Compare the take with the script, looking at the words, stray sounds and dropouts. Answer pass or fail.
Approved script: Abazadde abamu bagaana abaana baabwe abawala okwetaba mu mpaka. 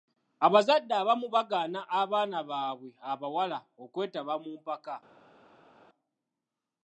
pass